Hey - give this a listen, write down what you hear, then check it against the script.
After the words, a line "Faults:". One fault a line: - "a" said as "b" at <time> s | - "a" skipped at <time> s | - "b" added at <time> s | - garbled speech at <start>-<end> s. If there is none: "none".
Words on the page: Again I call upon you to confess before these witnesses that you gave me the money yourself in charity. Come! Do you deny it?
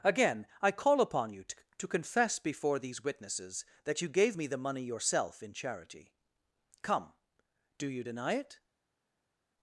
Again I call upon you to to confess before these witnesses that you gave me the money yourself in charity. Come! Do you deny it?
Faults:
- "to" added at 1.8 s